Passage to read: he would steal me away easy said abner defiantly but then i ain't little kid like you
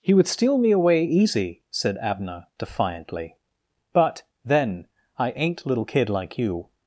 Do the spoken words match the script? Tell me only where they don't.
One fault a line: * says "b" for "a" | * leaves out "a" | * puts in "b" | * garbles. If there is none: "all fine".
all fine